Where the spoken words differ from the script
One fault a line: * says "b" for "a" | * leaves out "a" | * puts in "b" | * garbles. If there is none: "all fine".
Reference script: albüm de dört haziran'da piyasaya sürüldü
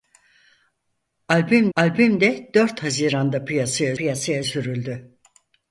* puts in "albüm"
* puts in "piyasaya"